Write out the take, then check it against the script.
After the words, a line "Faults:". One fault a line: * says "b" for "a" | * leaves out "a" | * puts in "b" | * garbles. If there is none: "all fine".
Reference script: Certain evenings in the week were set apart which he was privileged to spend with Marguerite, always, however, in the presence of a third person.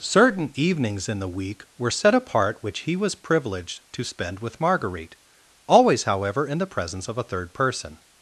Certain evenings in the week were set apart which he was privileged to spend with Marguerite, always, however, in the presence of a third person.
Faults:
all fine